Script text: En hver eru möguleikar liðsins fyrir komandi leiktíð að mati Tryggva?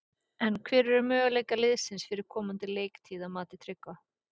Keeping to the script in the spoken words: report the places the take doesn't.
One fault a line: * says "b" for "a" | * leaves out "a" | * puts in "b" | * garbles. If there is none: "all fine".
all fine